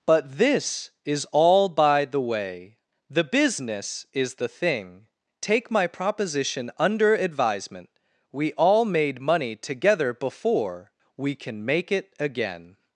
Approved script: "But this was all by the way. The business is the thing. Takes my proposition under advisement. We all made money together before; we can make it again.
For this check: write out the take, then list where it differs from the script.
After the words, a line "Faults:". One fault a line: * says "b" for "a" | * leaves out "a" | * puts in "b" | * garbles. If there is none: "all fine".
"But this is all by the way. The business is the thing. Take my proposition under advisement. We all made money together before; we can make it again.
Faults:
* says "is" for "was"
* says "Take" for "Takes"